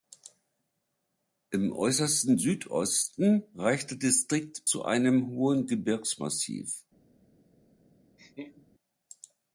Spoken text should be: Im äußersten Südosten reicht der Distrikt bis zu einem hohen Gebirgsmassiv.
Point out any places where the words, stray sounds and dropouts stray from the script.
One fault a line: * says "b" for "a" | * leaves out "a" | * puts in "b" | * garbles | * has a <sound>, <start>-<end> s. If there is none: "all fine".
* leaves out "bis"
* has a laugh, 8.2-8.7 s